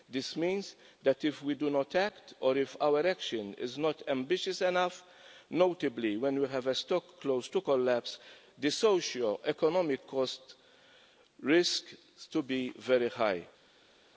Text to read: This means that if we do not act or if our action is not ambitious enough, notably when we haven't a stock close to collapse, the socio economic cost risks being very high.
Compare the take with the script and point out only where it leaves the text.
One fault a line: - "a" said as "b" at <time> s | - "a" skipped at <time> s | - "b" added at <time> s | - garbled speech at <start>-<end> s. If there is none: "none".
- "haven't" said as "have" at 6.5 s